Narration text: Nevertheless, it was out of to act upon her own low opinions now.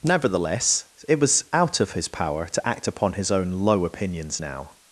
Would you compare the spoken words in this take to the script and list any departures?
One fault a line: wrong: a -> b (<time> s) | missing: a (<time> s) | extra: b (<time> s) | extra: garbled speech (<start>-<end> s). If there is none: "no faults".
extra: his power (1.9 s)
wrong: her -> his (3.1 s)